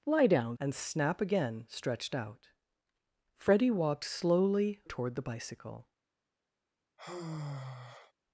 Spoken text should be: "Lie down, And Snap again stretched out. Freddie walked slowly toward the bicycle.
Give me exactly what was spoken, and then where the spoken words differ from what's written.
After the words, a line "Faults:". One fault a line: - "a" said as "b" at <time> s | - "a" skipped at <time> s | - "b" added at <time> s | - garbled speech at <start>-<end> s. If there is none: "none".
"Lie down, And Snap again stretched out. Freddie walked slowly toward the bicycle.
Faults:
none